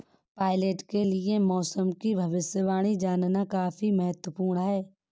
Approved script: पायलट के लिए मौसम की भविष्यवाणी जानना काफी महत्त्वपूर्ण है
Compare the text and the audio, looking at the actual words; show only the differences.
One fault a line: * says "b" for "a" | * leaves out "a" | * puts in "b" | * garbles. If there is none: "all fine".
all fine